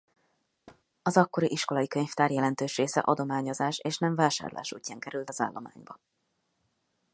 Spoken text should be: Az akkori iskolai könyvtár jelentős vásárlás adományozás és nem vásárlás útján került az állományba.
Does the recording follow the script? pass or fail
fail